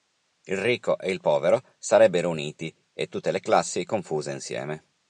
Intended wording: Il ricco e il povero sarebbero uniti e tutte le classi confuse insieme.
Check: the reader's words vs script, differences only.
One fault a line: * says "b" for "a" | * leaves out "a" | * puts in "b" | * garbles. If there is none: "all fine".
all fine